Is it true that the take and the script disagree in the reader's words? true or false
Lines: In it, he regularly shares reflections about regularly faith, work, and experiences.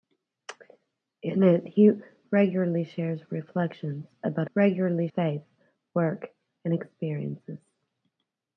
false